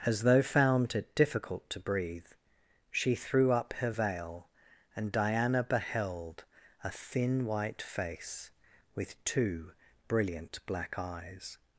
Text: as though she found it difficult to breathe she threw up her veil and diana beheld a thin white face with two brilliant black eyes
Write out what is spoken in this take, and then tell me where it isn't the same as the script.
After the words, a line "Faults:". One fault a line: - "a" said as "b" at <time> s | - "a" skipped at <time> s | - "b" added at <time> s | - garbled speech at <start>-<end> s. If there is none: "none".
as though found it difficult to breathe she threw up her veil and diana beheld a thin white face with two brilliant black eyes
Faults:
- "she" skipped at 0.4 s